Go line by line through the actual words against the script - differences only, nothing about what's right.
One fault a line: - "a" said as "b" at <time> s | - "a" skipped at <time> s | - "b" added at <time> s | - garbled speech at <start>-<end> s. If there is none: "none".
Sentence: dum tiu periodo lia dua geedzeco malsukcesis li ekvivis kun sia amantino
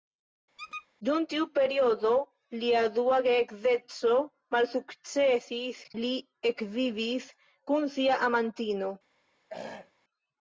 none